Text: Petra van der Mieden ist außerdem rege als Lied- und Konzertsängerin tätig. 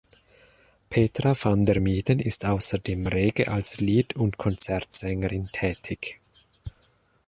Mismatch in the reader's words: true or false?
false